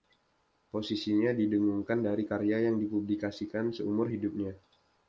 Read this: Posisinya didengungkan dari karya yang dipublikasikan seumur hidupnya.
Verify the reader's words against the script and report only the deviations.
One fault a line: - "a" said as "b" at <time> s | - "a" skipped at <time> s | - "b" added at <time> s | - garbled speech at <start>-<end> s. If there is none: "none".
none